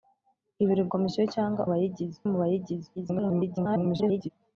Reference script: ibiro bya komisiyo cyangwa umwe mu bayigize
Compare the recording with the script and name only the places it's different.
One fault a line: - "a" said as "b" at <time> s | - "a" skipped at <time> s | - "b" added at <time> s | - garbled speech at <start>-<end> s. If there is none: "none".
- "bya" skipped at 0.8 s
- "umwe" said as "bayigize" at 1.7 s
- garbled speech at 3.0-4.3 s